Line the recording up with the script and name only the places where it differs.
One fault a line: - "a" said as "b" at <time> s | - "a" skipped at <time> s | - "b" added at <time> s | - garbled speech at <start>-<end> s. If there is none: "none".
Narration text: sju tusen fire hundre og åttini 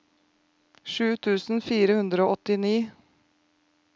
none